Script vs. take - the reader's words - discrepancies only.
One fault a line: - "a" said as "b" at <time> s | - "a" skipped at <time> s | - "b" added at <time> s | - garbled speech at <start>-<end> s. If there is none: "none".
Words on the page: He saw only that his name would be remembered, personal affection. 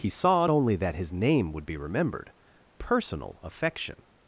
none